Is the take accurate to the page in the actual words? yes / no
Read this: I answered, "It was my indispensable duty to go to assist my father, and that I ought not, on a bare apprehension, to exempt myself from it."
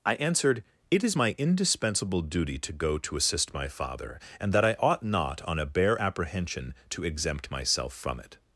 no